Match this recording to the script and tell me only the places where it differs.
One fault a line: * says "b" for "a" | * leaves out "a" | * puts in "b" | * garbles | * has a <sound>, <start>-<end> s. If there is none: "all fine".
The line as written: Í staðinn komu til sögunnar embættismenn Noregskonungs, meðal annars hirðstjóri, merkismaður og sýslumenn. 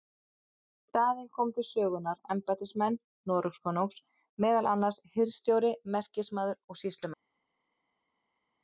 all fine